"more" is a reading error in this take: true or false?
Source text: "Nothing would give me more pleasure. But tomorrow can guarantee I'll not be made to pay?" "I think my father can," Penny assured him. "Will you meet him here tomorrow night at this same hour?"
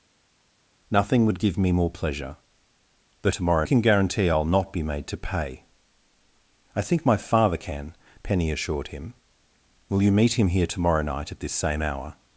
false